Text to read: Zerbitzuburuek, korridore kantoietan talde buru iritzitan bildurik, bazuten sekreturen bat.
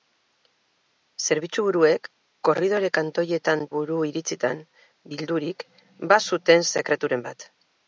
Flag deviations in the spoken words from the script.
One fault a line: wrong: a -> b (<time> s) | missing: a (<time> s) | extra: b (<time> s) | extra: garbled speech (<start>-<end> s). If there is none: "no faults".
missing: talde (3.6 s)